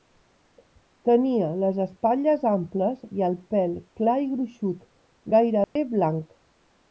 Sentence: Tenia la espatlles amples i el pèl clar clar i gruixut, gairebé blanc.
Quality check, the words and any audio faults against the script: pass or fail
fail